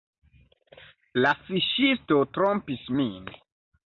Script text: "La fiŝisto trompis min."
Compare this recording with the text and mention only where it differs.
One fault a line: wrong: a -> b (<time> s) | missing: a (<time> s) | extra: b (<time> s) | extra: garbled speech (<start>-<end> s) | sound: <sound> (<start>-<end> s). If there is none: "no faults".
no faults